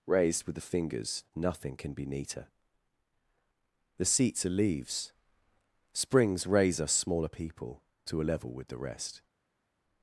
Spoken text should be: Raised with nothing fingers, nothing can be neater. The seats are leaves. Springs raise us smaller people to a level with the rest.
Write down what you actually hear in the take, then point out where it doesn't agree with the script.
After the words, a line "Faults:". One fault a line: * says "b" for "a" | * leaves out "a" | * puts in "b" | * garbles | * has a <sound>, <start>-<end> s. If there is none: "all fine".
Raised with the fingers, nothing can be neater. The seats are leaves. Springs raise us smaller people to a level with the rest.
Faults:
* says "the" for "nothing"